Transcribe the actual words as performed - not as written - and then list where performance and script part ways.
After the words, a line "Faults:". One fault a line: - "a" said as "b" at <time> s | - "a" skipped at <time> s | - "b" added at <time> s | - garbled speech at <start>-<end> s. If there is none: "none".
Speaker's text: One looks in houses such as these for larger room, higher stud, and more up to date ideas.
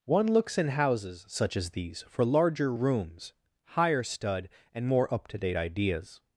One looks in houses such as these for larger rooms, higher stud, and more up to date ideas.
Faults:
- "room" said as "rooms" at 2.7 s